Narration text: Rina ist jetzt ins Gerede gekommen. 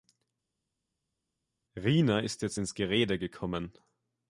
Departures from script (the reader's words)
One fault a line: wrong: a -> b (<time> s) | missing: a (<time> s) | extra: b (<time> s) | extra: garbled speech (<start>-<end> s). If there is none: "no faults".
no faults